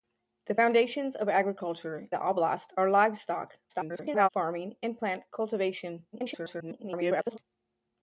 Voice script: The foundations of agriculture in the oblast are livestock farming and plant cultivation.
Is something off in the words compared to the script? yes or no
yes